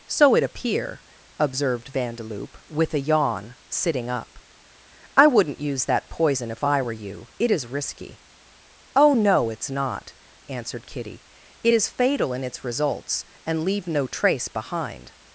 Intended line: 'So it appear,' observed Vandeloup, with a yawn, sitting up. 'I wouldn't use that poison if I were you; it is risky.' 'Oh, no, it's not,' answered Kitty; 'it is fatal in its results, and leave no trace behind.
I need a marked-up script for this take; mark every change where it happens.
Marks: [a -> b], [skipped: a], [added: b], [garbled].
'So it appear,' observed Vandeloup, with a yawn, sitting up. 'I wouldn't use that poison if I were you; it is risky.' 'Oh, no, it's not,' answered Kitty; 'it is fatal in its results, and leave no trace behind.